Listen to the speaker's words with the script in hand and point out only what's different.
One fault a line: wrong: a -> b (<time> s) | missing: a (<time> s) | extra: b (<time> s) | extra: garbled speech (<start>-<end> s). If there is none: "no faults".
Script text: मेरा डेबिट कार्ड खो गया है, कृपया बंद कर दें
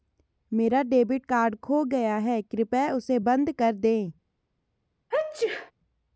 extra: उसे (2.9 s)